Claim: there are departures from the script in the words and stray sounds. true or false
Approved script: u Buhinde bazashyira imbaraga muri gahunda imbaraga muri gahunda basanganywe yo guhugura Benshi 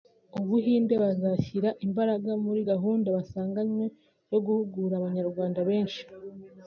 true